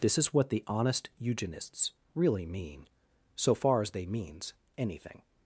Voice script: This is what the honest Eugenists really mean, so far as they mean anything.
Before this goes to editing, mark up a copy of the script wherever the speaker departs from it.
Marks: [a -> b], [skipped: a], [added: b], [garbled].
This is what the honest Eugenists really mean, so far as they [mean -> means] anything.